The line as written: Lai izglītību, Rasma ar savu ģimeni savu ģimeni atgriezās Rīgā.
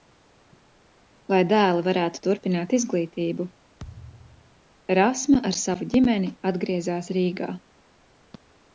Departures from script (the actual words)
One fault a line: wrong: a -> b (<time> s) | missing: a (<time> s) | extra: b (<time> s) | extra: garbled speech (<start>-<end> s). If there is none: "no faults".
extra: dēli varētu turpināt (1.5 s)
missing: savu ģimeni (6.3 s)